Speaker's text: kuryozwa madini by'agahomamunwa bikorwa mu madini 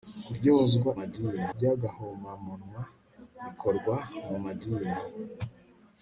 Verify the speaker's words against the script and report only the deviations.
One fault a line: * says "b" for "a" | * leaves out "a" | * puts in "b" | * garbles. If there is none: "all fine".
all fine